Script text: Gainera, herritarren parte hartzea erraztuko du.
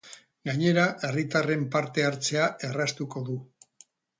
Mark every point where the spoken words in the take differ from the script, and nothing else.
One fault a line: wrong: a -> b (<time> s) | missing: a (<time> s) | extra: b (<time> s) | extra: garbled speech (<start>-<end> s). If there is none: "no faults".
no faults